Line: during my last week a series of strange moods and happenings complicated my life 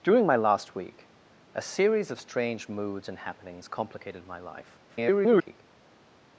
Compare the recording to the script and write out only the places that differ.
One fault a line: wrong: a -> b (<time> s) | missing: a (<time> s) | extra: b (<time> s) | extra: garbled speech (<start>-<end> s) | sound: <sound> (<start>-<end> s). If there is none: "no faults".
extra: garbled speech (4.9-5.6 s)